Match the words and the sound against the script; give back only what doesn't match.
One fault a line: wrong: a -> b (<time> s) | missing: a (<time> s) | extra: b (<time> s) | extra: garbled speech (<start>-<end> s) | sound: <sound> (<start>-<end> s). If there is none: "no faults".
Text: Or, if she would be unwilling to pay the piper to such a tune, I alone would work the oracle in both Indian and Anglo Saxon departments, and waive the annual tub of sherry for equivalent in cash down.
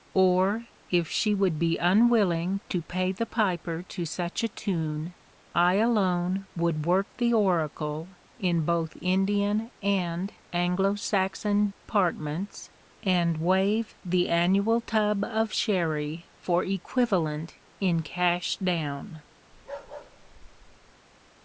sound: dropout (11.7-11.8 s)
sound: bark (19.5-20.9 s)